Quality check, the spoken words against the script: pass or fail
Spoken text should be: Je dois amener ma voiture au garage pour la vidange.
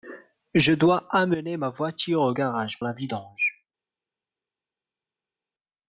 fail